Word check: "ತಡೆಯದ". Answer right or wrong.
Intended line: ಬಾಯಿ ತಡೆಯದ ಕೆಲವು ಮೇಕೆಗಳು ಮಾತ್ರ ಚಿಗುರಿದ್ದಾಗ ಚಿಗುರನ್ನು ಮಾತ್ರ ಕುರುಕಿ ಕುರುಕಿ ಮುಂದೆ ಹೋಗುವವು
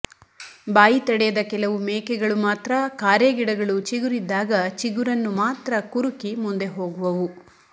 right